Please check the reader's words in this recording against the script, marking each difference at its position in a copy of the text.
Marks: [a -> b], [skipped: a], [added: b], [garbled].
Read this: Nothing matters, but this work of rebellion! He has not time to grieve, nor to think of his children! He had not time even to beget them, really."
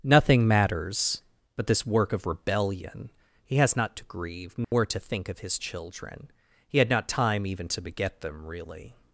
Nothing matters, but this work of rebellion! He has not [skipped: time] to grieve, nor to think of his children! He had not time even to beget them, really."